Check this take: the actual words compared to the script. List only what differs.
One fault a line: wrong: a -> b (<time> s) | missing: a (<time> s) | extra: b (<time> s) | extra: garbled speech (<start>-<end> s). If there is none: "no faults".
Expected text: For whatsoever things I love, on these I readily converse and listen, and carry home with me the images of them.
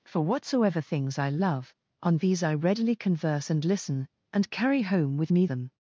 missing: the images of (5.4 s)